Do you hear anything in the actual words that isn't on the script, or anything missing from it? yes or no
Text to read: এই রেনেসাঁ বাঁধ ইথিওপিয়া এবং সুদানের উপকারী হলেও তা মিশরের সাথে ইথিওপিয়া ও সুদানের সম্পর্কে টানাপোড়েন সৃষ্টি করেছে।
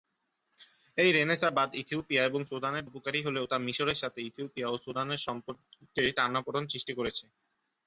no